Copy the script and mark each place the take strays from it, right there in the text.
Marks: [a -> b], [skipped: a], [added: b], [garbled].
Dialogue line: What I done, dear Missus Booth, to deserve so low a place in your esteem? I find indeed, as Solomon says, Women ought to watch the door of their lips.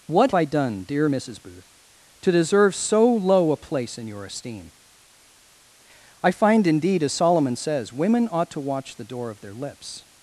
What I done, dear Missus Booth, to deserve so low a place in your esteem? I find indeed, as Solomon says, Women ought to watch the door of their lips.